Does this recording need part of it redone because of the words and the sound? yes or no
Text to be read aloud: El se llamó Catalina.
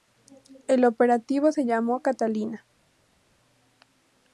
yes